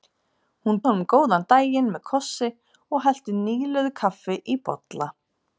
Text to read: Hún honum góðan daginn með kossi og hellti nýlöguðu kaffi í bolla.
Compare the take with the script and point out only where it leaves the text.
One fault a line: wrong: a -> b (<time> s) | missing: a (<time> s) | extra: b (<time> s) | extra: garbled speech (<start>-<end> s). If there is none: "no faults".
no faults